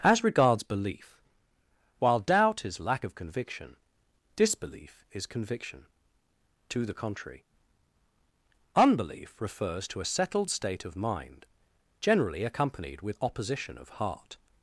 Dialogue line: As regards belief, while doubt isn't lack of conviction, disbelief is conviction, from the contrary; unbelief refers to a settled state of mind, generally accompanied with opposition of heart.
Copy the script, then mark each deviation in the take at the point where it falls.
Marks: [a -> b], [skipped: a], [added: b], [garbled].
As regards belief, while doubt [isn't -> is] lack of conviction, disbelief is conviction, [from -> to] the contrary; unbelief refers to a settled state of mind, generally accompanied with opposition of heart.